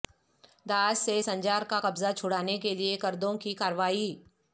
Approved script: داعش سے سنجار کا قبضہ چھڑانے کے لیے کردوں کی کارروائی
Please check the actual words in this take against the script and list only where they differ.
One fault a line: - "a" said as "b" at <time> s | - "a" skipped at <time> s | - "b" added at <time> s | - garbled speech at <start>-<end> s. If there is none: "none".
none